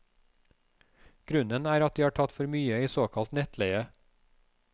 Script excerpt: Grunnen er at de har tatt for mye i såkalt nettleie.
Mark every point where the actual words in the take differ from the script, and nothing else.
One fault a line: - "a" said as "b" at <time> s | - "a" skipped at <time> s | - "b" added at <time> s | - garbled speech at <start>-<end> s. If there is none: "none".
none